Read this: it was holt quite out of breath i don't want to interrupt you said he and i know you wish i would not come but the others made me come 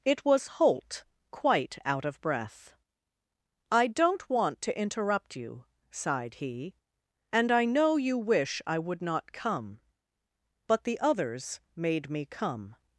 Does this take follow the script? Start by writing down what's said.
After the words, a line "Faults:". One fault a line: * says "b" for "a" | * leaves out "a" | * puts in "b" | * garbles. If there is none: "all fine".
it was holt quite out of breath i don't want to interrupt you sighed he and i know you wish i would not come but the others made me come
Faults:
* says "sighed" for "said"